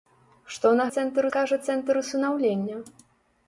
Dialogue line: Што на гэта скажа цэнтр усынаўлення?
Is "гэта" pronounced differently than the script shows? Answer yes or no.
yes